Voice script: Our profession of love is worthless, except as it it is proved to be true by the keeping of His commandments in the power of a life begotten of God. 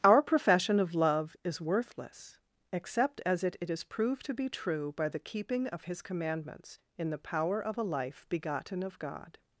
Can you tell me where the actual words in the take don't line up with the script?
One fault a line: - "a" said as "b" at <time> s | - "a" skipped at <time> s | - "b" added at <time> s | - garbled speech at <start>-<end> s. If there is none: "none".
none